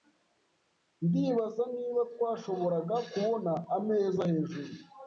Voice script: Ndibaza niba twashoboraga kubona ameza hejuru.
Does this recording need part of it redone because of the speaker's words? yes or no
no